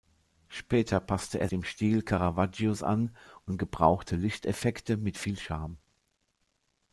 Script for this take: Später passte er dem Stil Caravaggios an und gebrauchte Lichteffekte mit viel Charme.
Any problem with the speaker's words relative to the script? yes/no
no